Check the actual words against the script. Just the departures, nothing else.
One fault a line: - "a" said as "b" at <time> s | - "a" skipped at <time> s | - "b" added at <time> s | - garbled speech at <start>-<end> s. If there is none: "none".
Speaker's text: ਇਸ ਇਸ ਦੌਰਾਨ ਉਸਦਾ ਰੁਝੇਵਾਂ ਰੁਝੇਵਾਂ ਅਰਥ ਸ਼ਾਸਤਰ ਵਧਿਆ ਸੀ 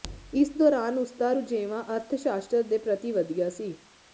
- "ਇਸ" skipped at 0.5 s
- "ਰੁਝੇਵਾਂ" skipped at 1.8 s
- "ਦੇ ਪ੍ਰਤੀ" added at 2.6 s